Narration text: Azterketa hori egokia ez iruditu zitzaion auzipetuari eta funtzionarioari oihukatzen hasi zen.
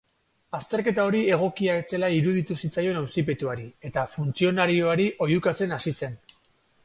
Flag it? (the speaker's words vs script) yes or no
yes